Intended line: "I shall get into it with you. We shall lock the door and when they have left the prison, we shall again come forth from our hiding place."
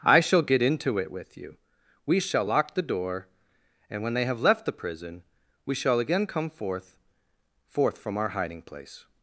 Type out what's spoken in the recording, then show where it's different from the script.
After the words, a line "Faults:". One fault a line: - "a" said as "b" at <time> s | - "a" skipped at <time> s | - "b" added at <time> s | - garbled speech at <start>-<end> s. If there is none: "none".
"I shall get into it with you. We shall lock the door and when they have left the prison, we shall again come forth forth from our hiding place."
Faults:
- "forth" added at 7.7 s